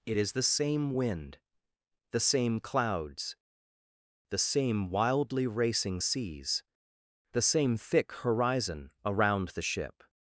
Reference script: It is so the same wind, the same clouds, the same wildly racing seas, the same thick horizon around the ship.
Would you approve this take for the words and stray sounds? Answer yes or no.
no